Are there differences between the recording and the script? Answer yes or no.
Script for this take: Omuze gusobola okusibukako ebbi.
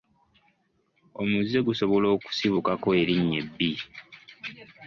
yes